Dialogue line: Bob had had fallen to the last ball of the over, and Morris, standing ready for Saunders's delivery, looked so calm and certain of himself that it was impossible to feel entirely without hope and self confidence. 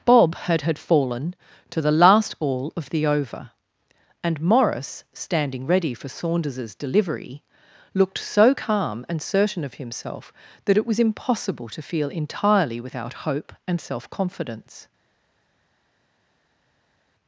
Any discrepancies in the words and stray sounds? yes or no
no